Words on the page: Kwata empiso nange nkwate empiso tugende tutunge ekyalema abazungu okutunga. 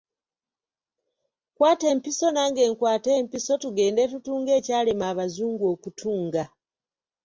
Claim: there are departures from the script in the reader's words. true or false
false